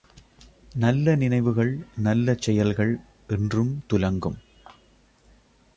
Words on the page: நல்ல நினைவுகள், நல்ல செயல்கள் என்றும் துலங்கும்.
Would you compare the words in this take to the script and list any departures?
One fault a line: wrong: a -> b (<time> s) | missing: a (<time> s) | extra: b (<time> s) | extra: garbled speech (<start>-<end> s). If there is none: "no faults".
no faults